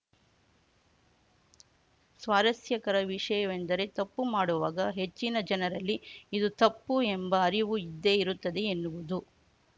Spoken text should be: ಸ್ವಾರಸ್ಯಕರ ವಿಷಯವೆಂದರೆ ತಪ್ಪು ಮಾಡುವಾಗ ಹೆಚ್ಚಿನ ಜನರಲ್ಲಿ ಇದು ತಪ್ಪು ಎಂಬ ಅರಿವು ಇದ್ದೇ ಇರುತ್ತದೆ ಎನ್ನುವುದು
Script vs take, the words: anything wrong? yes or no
no